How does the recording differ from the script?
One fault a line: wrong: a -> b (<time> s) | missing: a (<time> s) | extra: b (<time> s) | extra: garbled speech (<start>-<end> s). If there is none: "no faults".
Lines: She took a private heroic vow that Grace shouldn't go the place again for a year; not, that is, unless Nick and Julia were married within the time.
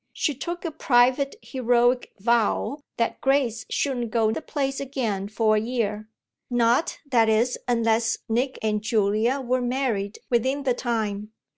no faults